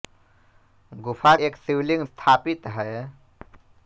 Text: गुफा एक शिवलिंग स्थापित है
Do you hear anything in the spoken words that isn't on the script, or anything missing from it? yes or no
no